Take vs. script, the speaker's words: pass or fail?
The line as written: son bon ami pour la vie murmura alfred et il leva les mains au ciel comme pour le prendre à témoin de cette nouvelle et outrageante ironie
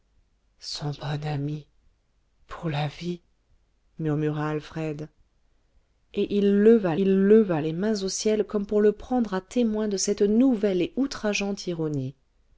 fail